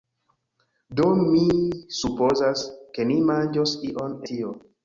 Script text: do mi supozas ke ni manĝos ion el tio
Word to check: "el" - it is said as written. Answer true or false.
false